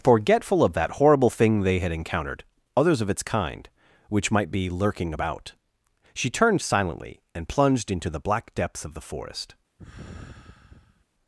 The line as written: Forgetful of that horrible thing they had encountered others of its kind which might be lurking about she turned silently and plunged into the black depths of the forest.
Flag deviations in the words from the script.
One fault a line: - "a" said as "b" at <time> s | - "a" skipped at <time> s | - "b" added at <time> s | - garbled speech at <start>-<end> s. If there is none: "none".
none